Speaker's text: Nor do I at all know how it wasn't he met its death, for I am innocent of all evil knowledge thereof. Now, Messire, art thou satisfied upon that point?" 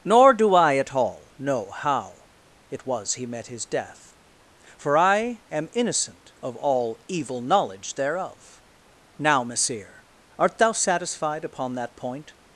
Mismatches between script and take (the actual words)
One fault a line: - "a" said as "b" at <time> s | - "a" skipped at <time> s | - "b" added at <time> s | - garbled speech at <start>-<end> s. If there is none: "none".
- "wasn't" said as "was" at 2.9 s
- "its" said as "his" at 3.5 s